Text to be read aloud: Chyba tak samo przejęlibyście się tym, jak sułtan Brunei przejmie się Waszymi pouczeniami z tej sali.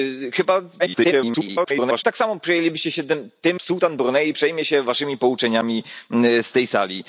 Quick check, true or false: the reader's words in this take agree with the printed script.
false